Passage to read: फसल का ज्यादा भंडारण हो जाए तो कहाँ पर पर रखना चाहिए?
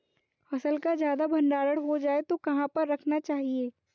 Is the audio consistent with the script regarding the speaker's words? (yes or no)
no